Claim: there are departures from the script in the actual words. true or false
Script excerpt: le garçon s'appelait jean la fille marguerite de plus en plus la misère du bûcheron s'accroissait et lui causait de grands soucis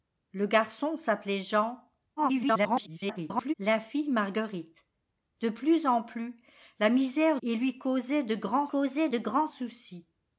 true